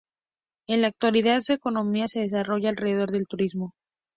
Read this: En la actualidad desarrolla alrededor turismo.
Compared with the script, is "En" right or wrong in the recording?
right